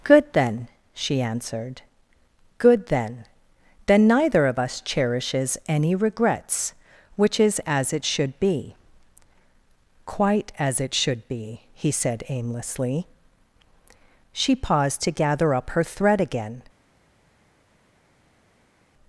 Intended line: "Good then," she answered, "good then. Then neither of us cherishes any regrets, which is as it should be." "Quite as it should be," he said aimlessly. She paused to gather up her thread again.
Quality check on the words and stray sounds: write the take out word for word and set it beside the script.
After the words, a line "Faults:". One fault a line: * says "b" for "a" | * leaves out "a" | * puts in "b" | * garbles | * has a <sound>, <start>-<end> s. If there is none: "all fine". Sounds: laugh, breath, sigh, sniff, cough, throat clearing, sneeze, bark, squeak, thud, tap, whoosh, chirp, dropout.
"Good then," she answered, "good then. Then neither of us cherishes any regrets, which is as it should be." "Quite as it should be," he said aimlessly. She paused to gather up her thread again.
Faults:
all fine